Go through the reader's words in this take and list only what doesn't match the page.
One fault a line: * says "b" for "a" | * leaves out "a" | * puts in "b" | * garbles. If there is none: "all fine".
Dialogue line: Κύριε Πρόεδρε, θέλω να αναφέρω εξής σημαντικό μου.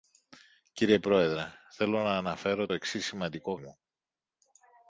all fine